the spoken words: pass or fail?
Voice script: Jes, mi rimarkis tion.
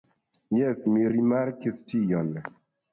pass